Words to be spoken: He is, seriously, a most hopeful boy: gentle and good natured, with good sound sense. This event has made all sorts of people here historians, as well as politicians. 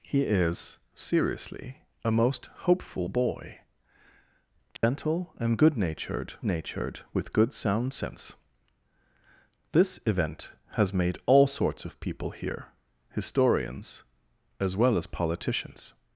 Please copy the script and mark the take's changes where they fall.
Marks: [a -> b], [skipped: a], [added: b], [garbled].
He is, seriously, a most hopeful boy: gentle and good natured, [added: natured] with good sound sense. This event has made all sorts of people here historians, as well as politicians.